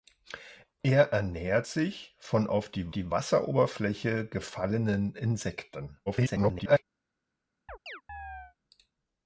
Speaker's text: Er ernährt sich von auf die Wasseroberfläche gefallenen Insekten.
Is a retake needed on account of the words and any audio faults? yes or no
yes